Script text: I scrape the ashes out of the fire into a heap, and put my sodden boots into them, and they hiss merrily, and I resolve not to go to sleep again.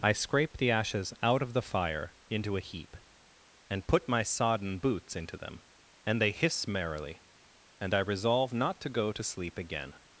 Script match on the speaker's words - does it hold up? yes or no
yes